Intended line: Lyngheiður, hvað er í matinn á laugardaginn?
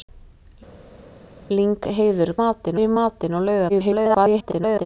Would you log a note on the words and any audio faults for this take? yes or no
yes